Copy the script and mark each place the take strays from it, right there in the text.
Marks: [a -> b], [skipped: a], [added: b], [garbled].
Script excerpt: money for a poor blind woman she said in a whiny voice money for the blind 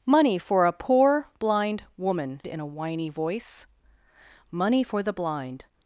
money for a poor blind woman [skipped: she said] in a whiny voice money for the blind